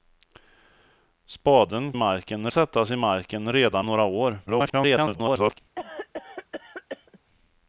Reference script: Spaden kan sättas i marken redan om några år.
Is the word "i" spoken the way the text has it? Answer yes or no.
yes